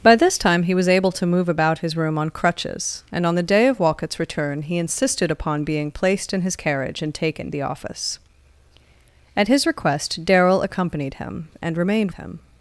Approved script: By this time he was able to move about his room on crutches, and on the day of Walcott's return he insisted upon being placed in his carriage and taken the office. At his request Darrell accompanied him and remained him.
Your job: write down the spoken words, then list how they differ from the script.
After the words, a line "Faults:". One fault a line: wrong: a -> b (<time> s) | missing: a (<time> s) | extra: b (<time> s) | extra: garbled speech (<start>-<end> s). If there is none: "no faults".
By this time he was able to move about his room on crutches, and on the day of Walcott's return he insisted upon being placed in his carriage and taken the office. At his request Darrell accompanied him and remained him.
Faults:
no faults